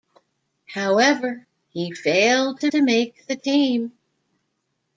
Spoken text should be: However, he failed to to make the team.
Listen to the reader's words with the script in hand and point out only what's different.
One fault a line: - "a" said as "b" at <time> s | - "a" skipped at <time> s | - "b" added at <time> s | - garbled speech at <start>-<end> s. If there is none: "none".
none